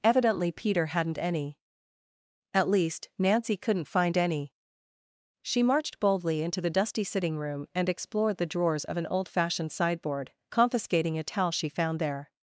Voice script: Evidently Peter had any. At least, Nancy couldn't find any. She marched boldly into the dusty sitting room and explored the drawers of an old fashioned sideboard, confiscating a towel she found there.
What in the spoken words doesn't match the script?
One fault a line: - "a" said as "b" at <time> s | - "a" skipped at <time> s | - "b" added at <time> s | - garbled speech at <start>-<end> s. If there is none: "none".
- "had" said as "hadn't" at 0.9 s